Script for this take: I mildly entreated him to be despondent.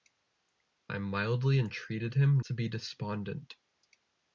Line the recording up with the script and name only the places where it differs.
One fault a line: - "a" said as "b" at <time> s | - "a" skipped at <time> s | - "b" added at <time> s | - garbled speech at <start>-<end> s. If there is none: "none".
none